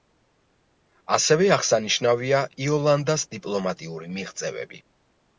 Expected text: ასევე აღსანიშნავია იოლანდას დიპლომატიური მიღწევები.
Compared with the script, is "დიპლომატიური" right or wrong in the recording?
right